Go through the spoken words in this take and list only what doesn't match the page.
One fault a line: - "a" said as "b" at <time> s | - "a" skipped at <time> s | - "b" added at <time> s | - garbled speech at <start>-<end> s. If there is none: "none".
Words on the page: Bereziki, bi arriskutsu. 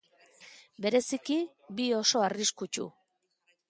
- "oso" added at 2.0 s